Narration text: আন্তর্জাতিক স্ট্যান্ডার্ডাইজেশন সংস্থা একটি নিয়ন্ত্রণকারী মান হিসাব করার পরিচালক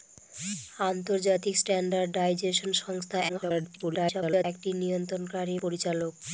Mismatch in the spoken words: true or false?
true